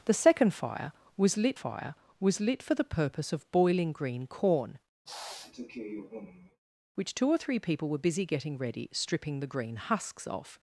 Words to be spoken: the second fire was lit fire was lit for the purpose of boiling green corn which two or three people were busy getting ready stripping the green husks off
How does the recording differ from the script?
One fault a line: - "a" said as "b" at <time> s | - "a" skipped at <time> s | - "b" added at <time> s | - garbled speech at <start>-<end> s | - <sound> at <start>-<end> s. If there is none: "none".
- sniff at 5.1-6.6 s